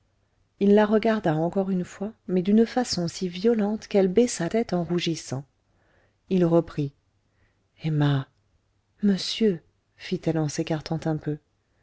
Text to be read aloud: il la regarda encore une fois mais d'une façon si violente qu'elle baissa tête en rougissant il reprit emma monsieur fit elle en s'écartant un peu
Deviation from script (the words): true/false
false